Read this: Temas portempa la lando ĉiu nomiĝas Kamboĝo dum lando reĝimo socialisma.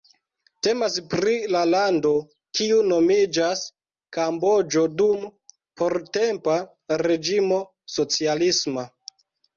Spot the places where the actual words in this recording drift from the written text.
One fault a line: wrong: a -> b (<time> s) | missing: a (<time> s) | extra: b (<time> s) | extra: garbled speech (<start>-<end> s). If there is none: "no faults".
wrong: portempa -> pri (1.1 s)
wrong: ĉiu -> kiu (2.6 s)
wrong: lando -> portempa (5.8 s)